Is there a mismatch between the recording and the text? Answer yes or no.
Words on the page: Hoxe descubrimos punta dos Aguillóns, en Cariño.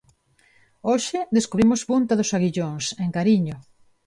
no